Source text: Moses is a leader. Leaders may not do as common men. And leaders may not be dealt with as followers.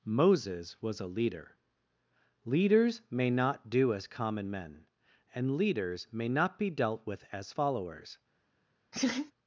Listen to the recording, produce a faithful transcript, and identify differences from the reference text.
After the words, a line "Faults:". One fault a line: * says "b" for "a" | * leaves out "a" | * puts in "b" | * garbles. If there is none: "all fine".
Moses was a leader. Leaders may not do as common men. And leaders may not be dealt with as followers.
Faults:
* says "was" for "is"